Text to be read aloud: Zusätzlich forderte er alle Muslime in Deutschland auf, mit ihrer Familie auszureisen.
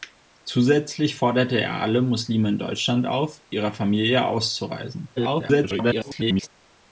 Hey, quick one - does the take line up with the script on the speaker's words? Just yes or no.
no